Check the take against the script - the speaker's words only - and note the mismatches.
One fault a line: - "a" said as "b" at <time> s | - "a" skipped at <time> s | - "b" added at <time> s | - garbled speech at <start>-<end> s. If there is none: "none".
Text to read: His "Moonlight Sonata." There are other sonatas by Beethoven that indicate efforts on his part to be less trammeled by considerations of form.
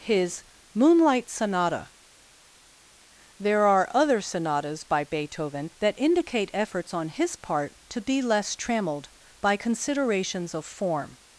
none